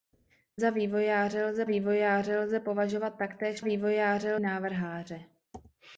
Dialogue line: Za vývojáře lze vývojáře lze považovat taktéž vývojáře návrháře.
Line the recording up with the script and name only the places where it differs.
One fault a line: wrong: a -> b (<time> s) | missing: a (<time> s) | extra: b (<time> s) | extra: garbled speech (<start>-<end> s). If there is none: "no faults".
no faults